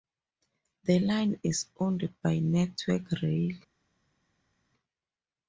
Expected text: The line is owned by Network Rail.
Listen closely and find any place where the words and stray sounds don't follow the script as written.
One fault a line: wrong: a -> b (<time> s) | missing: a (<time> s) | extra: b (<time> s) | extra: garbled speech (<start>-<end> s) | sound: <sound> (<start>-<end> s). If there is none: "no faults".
no faults